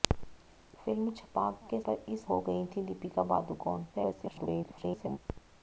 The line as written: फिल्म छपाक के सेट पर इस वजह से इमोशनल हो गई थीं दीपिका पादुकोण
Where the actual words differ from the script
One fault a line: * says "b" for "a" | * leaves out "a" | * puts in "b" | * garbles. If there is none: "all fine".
* leaves out "सेट"
* leaves out "वजह से इमोशनल"
* garbles